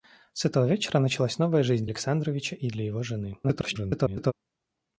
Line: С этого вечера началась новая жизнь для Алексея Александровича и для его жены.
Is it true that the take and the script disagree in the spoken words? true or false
true